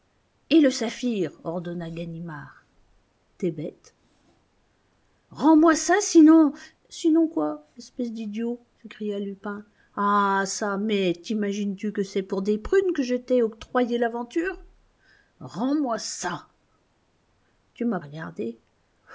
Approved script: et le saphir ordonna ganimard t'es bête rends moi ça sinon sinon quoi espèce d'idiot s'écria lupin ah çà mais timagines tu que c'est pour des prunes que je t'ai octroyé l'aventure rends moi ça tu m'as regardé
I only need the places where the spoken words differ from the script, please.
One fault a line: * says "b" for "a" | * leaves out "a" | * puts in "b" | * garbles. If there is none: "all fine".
all fine